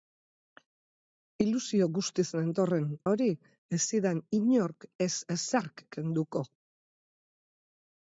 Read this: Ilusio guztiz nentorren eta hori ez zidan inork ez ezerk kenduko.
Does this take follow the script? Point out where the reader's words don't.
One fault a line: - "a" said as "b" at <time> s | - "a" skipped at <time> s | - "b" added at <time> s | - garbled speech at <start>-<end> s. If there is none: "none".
- "eta" skipped at 2.9 s